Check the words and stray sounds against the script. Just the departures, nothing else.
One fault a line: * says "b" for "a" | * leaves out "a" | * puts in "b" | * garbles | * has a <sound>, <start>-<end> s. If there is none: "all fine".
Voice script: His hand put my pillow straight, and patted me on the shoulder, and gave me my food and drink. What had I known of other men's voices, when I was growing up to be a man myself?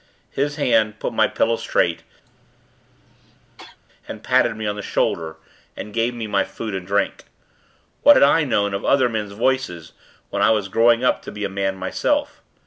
* has a cough, 2.2-3.8 s